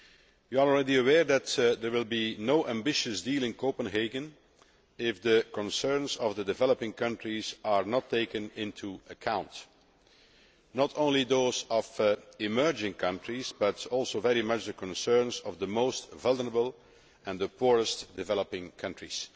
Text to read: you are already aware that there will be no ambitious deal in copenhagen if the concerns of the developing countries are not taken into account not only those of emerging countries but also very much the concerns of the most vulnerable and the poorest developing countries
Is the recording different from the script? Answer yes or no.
no